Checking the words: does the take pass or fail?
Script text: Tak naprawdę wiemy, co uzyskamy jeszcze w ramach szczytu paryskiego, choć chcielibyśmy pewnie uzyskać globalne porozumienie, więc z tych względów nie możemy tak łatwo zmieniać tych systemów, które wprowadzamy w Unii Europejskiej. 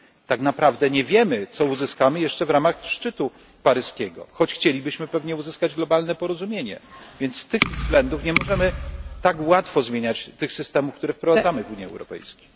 fail